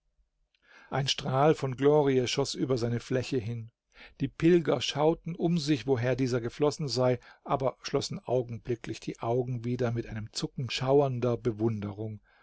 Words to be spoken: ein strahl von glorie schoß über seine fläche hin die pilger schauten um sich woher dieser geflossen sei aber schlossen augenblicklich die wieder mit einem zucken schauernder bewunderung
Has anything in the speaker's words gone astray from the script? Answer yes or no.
yes